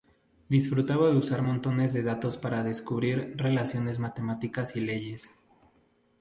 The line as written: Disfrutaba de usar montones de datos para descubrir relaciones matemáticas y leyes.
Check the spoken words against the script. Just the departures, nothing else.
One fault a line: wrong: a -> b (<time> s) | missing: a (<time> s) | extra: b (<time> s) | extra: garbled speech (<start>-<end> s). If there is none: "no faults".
no faults